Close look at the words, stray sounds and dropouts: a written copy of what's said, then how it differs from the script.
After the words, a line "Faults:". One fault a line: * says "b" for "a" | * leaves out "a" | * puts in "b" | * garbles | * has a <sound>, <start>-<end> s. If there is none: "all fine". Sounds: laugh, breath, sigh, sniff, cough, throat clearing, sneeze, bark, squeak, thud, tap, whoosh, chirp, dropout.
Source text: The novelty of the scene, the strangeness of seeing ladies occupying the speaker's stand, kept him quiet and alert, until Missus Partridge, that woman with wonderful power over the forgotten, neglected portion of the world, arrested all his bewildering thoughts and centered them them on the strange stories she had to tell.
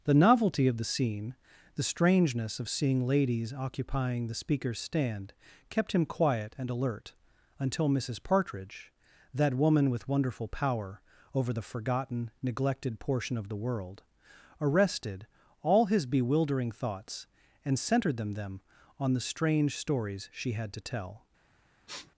The novelty of the scene, the strangeness of seeing ladies occupying the speaker's stand, kept him quiet and alert, until Missus Partridge, that woman with wonderful power over the forgotten, neglected portion of the world, arrested all his bewildering thoughts and centered them them on the strange stories she had to tell.
Faults:
* has a sniff, 21.9-22.1 s